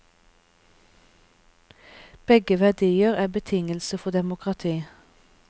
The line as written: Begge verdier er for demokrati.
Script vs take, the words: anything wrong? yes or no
yes